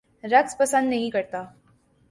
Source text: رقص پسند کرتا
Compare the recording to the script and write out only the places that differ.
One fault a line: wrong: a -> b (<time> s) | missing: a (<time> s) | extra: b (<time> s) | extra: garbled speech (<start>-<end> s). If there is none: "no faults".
extra: نہیں (0.9 s)